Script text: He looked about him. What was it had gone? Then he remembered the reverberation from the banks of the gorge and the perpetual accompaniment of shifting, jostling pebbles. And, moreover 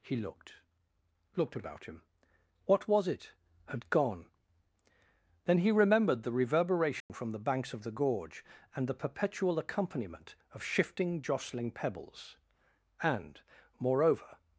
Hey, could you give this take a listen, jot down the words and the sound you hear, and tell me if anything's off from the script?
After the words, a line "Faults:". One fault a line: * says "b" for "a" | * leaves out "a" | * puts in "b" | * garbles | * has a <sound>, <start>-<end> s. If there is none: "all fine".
He looked looked about him. What was it had gone? Then he remembered the reverberation from the banks of the gorge and the perpetual accompaniment of shifting, jostling pebbles. And, moreover
Faults:
* puts in "looked"
* has a dropout, 7.0-7.1 s